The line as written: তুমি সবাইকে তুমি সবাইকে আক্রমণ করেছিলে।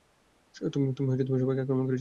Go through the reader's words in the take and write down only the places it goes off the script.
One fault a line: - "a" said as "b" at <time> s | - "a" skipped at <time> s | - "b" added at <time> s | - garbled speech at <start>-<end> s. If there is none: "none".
- "তুমি সবাইকে" skipped at 1.6 s